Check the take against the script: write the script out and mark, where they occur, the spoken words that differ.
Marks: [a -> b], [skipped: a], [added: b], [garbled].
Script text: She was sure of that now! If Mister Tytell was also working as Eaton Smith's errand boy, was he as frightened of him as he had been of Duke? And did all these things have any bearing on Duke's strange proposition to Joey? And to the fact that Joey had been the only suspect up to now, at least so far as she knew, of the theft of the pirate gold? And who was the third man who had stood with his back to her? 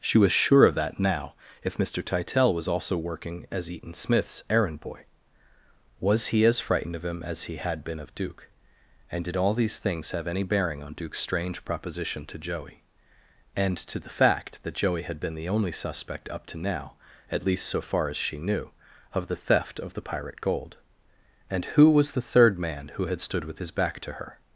She was sure of that now! If Mister Tytell was also working as Eaton Smith's errand boy, was he as frightened of him as he had been of Duke? And did all these things have any bearing on Duke's strange proposition to Joey? And to the fact that Joey had been the only suspect up to now, at least so far as she knew, of the theft of the pirate gold? And who was the third man who had stood with his back to her?